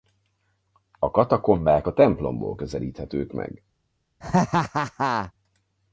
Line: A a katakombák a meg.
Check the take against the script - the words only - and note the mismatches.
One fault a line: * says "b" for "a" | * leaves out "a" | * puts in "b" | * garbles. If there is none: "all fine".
* puts in "katakombák"
* says "templomból közelíthetők" for "katakombák a"